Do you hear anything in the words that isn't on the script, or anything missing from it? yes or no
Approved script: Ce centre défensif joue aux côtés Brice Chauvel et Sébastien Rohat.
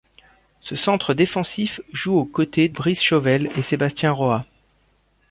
no